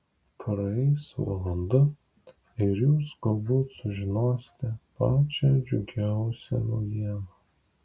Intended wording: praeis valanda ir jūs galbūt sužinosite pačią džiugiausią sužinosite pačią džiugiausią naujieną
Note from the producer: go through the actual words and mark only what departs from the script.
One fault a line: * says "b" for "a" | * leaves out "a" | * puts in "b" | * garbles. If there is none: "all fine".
* leaves out "sužinosite pačią džiugiausią"